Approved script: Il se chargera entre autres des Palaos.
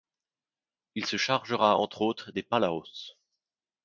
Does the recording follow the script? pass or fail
pass